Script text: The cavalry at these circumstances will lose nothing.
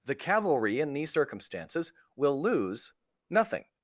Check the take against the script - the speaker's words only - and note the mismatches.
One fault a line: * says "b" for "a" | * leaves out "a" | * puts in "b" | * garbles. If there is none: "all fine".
* says "in" for "at"